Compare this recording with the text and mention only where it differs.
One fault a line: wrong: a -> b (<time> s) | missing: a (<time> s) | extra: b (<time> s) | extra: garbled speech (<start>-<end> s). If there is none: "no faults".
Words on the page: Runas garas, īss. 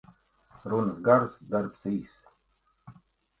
extra: darbs (1.6 s)